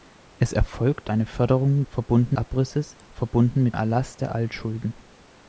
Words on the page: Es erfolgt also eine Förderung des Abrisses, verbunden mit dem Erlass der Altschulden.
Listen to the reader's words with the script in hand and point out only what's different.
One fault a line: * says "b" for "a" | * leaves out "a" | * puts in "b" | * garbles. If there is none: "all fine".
* leaves out "also"
* says "verbunden" for "des"
* leaves out "dem"